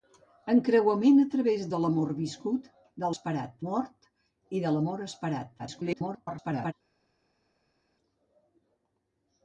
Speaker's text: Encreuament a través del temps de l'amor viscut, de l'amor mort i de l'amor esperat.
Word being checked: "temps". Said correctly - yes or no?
no